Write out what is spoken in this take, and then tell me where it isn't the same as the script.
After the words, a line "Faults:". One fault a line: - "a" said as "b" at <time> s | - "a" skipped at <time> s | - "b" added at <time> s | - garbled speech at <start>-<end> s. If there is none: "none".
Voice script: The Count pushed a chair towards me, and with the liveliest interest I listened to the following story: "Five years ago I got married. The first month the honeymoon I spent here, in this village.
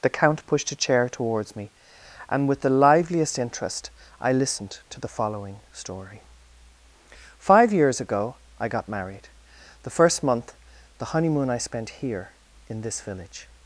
The Count pushed a chair towards me, and with the liveliest interest I listened to the following story: "Five years ago I got married. The first month the honeymoon I spent here, in this village.
Faults:
none